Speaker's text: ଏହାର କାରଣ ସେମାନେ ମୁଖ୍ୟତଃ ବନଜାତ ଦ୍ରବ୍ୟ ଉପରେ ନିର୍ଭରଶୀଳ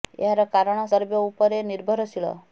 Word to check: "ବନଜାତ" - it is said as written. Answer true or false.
false